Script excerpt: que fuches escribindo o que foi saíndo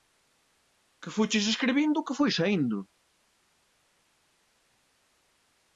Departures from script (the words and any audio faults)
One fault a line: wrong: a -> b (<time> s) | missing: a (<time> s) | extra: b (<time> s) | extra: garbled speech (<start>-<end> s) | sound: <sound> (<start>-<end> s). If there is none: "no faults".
no faults